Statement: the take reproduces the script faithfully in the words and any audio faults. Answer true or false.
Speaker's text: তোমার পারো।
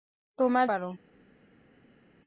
true